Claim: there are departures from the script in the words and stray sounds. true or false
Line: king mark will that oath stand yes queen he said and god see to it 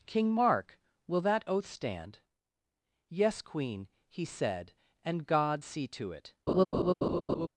true